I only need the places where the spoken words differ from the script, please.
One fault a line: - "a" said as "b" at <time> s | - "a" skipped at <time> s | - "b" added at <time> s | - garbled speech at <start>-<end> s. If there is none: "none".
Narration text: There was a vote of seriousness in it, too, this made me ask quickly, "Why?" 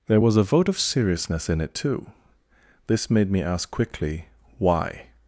none